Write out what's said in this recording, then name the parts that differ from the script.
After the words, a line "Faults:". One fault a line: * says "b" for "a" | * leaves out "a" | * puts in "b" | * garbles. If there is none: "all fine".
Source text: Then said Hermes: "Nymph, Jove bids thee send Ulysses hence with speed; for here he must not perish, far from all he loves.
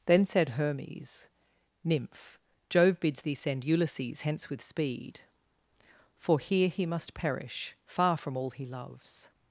Then said Hermes: "Nymph, Jove bids thee send Ulysses hence with speed; for here he must perish, far from all he loves.
Faults:
* leaves out "not"